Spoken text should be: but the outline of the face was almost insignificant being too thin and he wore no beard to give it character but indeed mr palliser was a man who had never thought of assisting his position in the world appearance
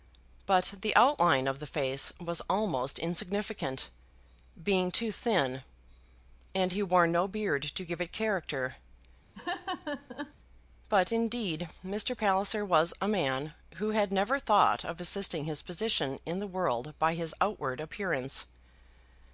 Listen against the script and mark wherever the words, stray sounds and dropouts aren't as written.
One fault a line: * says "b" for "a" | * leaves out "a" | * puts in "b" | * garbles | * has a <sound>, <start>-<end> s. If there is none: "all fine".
* has a laugh, 9.3-10.3 s
* puts in "by his outward"